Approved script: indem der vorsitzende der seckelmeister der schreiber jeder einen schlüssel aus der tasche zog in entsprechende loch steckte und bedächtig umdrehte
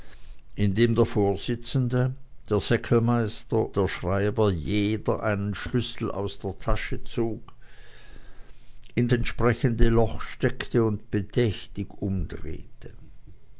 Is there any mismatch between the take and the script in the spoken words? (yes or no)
no